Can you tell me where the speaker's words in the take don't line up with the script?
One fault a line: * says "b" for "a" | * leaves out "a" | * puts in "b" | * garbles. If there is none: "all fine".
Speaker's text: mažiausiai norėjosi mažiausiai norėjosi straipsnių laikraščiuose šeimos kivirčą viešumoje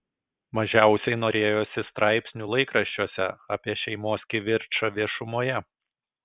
* leaves out "mažiausiai norėjosi"
* puts in "apie"